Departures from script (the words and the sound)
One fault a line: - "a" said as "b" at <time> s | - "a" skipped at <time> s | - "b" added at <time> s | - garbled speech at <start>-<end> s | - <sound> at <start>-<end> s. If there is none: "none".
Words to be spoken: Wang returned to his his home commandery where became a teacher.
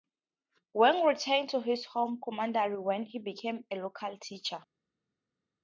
- "his" skipped at 1.9 s
- "he" added at 3.0 s
- "local" added at 3.8 s